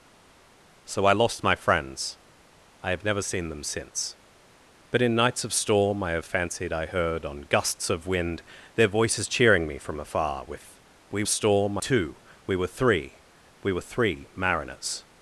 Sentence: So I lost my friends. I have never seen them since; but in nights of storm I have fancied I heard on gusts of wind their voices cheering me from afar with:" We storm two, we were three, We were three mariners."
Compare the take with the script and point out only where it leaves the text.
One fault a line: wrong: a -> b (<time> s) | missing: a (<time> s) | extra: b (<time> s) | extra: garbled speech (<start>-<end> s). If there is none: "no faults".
no faults